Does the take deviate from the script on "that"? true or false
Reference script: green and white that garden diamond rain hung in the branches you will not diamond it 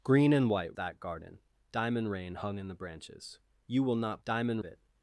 false